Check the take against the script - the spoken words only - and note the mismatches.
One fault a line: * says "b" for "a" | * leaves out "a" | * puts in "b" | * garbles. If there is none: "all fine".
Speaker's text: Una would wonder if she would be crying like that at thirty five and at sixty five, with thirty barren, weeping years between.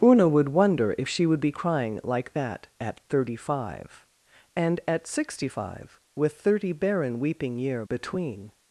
* says "year" for "years"